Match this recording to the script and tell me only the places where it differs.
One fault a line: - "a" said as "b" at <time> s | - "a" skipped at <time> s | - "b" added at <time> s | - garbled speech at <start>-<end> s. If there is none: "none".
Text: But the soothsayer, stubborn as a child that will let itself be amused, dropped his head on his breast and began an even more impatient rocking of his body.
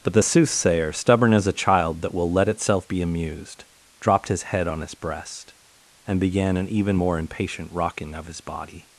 none